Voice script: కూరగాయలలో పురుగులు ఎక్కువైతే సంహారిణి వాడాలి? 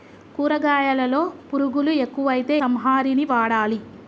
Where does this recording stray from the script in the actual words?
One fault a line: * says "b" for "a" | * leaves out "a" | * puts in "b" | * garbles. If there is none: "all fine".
all fine